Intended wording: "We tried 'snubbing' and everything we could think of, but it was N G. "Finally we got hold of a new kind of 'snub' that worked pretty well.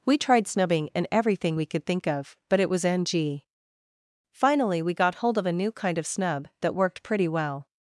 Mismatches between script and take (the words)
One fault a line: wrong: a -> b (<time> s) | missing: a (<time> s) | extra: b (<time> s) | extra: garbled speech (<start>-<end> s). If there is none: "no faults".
no faults